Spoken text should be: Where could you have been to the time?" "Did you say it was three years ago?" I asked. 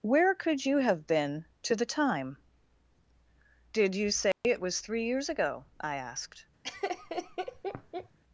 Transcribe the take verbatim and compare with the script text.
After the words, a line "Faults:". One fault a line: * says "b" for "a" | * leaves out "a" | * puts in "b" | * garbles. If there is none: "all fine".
Where could you have been to the time?" "Did you say it was three years ago?" I asked.
Faults:
all fine